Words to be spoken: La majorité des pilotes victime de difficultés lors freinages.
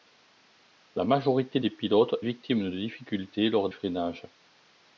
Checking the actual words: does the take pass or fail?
pass